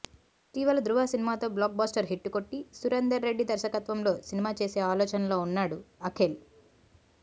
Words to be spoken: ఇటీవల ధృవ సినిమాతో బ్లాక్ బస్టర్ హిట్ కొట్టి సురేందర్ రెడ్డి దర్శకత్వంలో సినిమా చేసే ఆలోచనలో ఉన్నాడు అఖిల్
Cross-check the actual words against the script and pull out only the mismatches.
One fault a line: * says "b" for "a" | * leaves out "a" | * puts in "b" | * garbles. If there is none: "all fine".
all fine